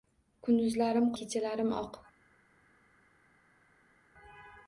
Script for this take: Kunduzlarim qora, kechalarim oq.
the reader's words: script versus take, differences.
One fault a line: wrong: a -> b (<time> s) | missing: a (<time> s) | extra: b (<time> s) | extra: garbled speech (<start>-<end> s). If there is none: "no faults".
missing: qora (1.1 s)